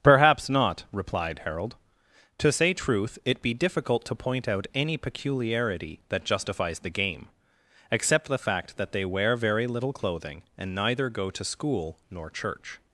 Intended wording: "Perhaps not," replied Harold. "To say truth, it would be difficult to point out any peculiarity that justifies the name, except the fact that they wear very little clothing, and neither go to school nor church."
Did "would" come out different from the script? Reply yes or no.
yes